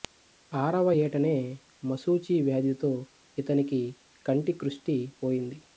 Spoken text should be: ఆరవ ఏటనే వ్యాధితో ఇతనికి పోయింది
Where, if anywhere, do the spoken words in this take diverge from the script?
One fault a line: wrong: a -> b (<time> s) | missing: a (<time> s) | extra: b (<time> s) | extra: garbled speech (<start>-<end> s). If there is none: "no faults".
extra: మశూచి (1.8 s)
extra: కంటి కృష్టి (4.2 s)